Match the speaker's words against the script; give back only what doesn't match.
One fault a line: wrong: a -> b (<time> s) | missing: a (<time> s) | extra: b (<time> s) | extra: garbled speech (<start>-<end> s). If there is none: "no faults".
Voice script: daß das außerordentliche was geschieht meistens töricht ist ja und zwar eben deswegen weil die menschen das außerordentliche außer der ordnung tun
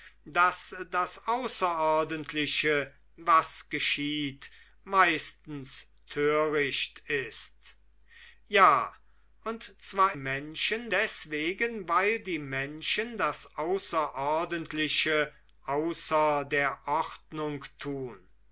wrong: eben -> menschen (10.1 s)